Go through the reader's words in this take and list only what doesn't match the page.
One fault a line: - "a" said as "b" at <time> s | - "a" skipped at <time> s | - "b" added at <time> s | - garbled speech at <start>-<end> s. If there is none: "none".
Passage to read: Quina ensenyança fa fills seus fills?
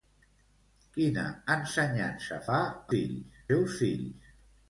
none